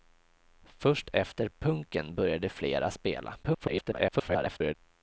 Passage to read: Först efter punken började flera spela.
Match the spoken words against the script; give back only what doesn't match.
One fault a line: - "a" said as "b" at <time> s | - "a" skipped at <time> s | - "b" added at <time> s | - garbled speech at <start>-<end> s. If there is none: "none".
- garbled speech at 3.4-4.7 s